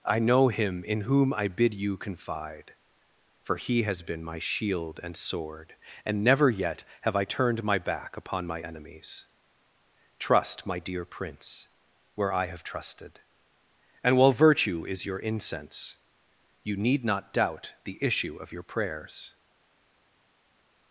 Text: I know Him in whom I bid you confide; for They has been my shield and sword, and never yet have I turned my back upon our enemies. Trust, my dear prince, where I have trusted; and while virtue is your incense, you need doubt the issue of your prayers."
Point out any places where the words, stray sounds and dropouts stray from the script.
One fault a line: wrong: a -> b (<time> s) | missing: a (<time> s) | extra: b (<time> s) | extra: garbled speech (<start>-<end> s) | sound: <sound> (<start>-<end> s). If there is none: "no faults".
wrong: They -> He (3.6 s)
wrong: our -> my (8.5 s)
extra: not (17.0 s)